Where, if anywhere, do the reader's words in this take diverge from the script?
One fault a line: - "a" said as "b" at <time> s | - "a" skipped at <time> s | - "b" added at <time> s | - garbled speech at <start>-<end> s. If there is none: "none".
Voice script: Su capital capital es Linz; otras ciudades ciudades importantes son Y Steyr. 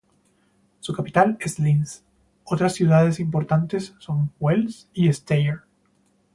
- "capital" skipped at 1.4 s
- "ciudades" skipped at 3.2 s
- "Wels" added at 4.4 s